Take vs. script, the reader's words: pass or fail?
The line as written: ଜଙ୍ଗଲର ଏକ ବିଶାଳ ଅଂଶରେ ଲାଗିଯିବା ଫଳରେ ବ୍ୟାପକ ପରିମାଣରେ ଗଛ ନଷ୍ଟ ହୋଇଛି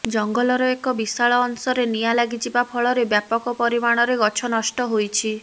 fail